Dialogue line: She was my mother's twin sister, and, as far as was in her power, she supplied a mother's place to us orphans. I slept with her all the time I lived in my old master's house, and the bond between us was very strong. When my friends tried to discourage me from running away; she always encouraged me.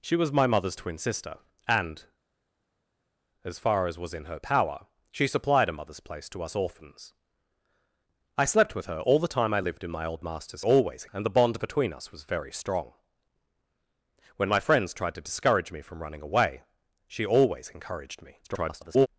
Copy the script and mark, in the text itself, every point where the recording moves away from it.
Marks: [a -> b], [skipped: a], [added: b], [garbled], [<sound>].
She was my mother's twin sister, and, as far as was in her power, she supplied a mother's place to us orphans. I slept with her all the time I lived in my old master's [house, -> always] and the bond between us was very strong. When my friends tried to discourage me from running away; she always encouraged me. [garbled]